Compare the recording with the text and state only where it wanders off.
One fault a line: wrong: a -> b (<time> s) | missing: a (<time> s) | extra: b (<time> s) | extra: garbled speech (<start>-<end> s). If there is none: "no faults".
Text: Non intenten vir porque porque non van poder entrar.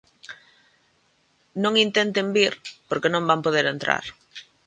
missing: porque (3.1 s)